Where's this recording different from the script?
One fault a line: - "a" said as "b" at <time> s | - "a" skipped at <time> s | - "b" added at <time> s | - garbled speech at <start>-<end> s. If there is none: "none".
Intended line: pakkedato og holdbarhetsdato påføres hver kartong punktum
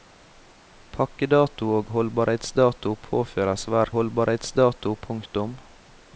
- "kartong" said as "holdbarhetsdato" at 4.0 s